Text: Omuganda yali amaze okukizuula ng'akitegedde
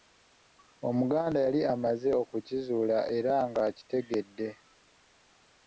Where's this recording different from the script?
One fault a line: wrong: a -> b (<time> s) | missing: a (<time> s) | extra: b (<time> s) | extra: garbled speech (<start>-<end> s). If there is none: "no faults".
extra: era (3.2 s)